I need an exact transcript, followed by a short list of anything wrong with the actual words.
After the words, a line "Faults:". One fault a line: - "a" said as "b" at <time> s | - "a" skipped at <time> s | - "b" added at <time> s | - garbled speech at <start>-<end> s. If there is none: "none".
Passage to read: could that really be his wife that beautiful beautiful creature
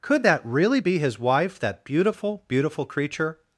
could that really be his wife that beautiful beautiful creature
Faults:
none